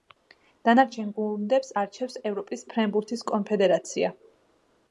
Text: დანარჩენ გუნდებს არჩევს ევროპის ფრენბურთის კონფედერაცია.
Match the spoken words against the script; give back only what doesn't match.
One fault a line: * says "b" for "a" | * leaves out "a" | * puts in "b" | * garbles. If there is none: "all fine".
all fine